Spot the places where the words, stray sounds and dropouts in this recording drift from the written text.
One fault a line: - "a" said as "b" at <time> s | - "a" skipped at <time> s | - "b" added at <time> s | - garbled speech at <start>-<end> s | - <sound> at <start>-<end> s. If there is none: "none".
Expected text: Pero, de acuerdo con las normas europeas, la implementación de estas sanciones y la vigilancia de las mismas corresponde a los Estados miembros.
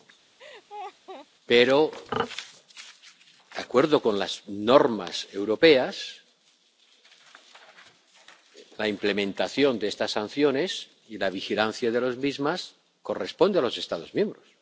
- laugh at 0.4-1.3 s